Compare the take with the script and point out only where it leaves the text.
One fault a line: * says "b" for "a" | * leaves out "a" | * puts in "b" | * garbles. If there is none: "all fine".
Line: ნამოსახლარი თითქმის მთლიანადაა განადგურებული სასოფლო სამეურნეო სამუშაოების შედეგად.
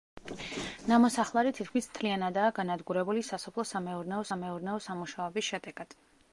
* puts in "სამეურნეო"